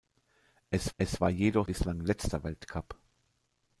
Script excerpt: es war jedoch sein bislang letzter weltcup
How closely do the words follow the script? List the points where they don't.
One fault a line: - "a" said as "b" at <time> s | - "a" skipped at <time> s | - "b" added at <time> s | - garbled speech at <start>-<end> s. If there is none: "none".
- "es" added at 1.0 s
- "sein" skipped at 1.7 s